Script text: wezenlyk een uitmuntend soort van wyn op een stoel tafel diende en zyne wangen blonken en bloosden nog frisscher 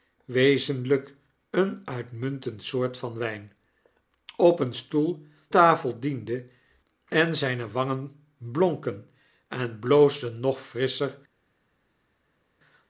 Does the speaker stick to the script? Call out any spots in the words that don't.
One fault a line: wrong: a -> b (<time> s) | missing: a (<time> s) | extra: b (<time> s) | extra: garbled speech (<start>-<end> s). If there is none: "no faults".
no faults